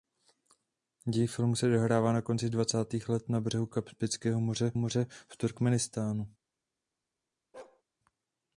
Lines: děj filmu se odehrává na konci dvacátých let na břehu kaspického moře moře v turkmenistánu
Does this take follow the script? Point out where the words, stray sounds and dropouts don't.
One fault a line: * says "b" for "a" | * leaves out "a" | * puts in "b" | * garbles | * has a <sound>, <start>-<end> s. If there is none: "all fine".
* has a bark, 7.5-7.8 s